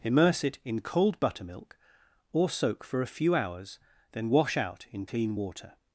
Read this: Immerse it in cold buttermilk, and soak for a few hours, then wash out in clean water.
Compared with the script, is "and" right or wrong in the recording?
wrong